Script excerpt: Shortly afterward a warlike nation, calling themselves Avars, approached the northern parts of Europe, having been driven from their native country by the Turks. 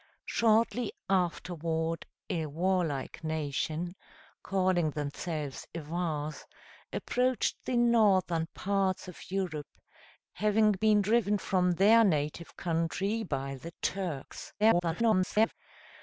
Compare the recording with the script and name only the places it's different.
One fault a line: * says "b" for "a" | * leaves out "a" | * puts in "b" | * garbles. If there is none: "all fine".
* garbles